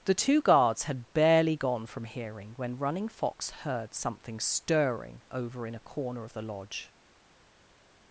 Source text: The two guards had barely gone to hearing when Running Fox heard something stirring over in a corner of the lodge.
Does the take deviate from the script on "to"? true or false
true